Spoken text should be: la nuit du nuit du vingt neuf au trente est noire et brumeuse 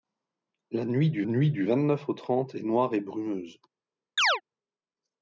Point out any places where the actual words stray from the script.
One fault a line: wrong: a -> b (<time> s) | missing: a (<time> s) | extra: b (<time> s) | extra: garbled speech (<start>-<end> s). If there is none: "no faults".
no faults